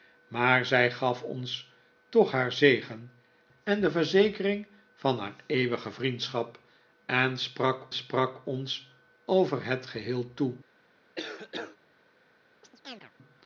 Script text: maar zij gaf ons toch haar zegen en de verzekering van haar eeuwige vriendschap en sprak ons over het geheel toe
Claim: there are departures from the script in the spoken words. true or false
true